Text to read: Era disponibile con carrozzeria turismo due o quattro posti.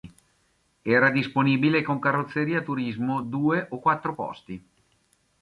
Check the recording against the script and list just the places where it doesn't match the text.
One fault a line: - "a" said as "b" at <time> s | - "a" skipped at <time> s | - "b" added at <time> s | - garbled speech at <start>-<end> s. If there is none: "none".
none